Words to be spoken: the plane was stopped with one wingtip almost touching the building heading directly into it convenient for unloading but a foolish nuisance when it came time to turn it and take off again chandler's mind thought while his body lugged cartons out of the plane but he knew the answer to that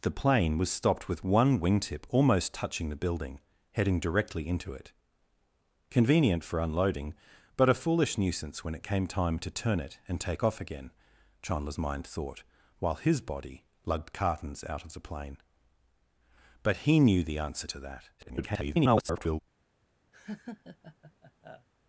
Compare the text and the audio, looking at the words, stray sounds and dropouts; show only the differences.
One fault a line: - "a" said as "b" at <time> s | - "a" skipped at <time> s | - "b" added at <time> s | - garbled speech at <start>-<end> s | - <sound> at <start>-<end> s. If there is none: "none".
- garbled speech at 18.2-19.4 s
- laugh at 20.1-21.7 s